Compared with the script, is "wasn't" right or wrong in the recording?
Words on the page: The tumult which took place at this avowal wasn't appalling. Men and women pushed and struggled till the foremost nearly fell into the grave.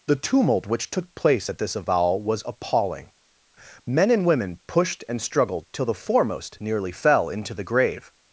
wrong